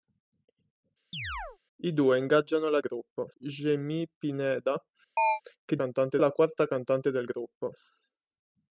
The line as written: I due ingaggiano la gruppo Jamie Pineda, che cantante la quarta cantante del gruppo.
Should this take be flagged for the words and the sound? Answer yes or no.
yes